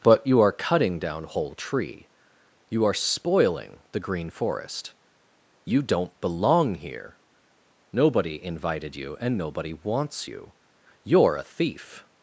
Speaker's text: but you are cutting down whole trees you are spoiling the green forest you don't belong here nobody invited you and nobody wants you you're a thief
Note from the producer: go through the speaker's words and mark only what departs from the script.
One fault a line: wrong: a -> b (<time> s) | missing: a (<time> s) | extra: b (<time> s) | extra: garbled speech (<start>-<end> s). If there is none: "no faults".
wrong: trees -> tree (1.5 s)